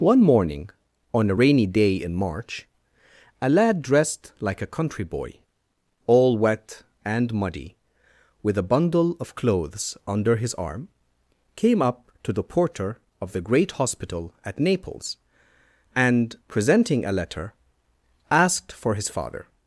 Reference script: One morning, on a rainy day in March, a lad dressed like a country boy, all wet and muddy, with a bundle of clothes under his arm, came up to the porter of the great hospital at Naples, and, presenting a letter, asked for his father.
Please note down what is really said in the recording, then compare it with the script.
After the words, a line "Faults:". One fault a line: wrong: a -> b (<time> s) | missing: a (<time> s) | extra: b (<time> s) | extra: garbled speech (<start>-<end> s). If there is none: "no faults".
One morning, on a rainy day in March, a lad dressed like a country boy, all wet and muddy, with a bundle of clothes under his arm, came up to the porter of the great hospital at Naples, and, presenting a letter, asked for his father.
Faults:
no faults